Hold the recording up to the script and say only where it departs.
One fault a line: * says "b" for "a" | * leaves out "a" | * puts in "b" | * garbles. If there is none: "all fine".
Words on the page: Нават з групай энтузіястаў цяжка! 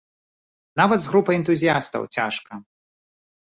all fine